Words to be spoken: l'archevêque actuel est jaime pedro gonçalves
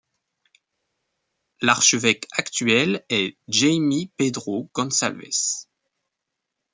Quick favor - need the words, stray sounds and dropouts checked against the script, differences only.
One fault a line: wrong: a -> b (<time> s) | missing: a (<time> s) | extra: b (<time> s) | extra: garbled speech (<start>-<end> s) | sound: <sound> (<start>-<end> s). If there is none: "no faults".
no faults